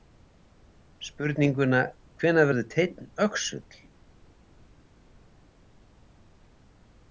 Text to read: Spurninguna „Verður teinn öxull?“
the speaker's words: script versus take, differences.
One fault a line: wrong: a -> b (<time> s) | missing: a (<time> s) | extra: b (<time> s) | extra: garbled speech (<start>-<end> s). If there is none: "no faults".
extra: Hvenær (2.2 s)